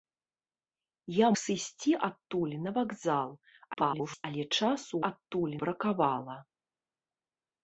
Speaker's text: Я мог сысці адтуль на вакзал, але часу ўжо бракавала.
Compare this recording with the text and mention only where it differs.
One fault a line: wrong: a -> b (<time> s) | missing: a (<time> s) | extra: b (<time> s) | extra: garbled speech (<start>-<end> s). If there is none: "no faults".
missing: мог (1.3 s)
extra: garbled speech (3.7-4.2 s)
wrong: ўжо -> адтуль (5.1 s)